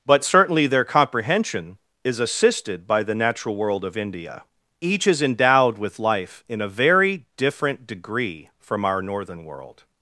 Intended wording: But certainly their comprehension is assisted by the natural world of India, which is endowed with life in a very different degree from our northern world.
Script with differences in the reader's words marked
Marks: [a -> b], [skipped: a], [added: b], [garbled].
But certainly their comprehension is assisted by the natural world of India, [which -> each] is endowed with life in a very different degree from our northern world.